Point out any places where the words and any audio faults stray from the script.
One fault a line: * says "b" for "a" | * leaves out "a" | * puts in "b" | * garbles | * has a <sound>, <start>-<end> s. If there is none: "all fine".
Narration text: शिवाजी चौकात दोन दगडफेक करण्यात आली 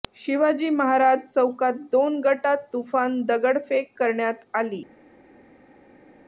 * puts in "महाराज"
* puts in "गटात तुफान"